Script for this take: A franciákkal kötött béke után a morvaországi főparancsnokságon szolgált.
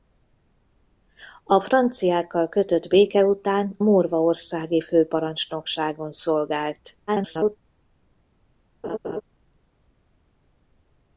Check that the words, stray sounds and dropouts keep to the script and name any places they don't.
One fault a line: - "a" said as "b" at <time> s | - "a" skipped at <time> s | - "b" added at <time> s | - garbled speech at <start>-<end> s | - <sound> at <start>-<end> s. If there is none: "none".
- "a" skipped at 3.8 s
- garbled speech at 7.1-7.6 s
- laugh at 8.8-9.2 s